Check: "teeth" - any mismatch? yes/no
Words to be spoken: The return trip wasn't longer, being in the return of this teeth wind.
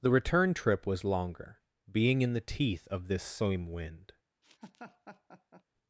yes